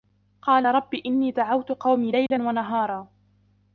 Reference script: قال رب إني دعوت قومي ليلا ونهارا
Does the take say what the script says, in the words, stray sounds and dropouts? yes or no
no